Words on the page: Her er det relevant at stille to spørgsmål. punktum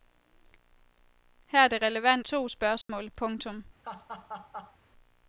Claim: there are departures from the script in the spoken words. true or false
true